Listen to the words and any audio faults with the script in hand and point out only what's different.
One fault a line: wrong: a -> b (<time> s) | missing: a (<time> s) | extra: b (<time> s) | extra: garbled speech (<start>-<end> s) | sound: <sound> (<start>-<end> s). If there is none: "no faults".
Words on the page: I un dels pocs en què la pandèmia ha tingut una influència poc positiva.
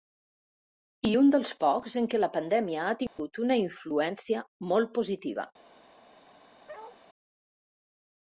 sound: dropout (3.1-3.2 s)
wrong: poc -> molt (4.7 s)
sound: bark (6.7-7.0 s)